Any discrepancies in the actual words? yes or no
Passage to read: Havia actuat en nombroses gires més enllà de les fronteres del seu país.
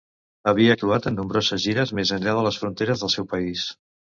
no